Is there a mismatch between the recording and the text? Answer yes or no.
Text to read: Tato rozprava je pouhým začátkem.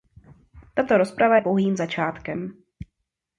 no